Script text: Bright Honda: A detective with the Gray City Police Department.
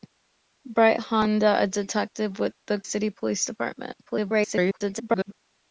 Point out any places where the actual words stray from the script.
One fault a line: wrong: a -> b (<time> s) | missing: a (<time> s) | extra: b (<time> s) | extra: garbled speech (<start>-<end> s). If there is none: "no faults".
missing: Gray (2.8 s)
extra: garbled speech (4.0-5.3 s)